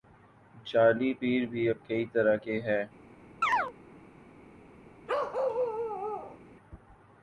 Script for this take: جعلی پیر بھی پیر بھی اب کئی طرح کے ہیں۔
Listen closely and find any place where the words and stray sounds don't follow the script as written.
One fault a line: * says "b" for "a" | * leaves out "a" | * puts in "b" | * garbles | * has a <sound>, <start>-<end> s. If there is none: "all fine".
* leaves out "پیر بھی"
* has a chirp, 3.4-3.7 s
* has a bark, 5.1-6.4 s